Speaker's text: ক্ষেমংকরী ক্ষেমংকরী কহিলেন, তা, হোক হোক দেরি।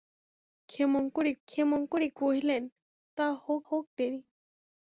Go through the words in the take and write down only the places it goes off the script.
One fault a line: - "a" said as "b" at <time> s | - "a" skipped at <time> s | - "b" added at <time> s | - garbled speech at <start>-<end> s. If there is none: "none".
none